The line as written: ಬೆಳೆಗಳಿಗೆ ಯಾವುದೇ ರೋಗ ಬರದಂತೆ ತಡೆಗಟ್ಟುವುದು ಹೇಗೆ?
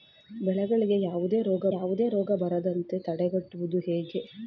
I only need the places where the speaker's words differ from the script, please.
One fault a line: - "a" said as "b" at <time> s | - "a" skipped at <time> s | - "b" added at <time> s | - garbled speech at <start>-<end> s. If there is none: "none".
- "ಯಾವುದೇ ರೋಗ" added at 1.7 s